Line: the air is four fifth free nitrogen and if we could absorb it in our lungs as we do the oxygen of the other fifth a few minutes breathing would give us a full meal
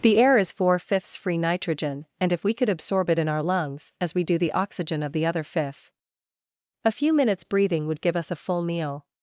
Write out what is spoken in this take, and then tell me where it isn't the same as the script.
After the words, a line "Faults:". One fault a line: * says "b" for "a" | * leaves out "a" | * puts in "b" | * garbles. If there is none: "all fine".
the air is four fifths free nitrogen and if we could absorb it in our lungs as we do the oxygen of the other fifth a few minutes breathing would give us a full meal
Faults:
* says "fifths" for "fifth"